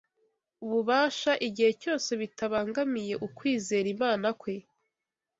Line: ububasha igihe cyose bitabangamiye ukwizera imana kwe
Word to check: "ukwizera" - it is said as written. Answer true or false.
true